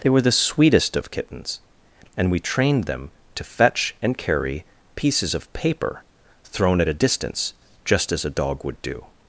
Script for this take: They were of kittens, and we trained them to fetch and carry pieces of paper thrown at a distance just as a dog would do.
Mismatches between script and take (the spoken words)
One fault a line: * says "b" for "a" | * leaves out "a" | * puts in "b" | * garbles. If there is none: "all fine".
* puts in "the sweetest"